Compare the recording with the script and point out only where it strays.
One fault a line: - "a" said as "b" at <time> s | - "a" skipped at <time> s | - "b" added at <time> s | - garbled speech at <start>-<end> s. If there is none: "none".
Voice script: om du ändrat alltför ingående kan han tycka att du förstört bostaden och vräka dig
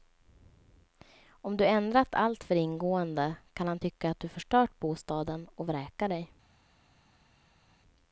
none